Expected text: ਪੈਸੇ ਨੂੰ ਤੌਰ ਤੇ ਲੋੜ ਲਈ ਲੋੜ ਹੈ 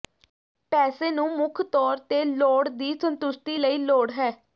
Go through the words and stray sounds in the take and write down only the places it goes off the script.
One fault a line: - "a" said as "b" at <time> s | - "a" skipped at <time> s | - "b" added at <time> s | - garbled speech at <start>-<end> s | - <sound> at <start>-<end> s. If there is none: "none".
- "ਮੁੱਖ" added at 1.3 s
- "ਦੀ ਸੰਤੁਸ਼ਟੀ" added at 2.7 s